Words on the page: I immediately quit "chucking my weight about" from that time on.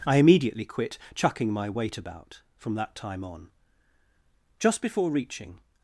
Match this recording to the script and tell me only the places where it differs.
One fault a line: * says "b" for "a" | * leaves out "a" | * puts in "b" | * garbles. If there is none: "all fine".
* puts in "Just before reaching"